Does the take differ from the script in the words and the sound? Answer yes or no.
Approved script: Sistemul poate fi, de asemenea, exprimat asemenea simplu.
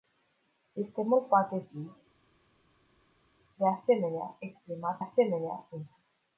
no